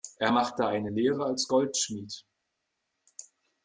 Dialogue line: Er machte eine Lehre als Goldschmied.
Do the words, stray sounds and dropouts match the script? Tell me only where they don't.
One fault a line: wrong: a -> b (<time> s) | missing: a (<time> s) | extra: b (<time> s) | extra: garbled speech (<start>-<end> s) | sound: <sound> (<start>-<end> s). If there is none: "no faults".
no faults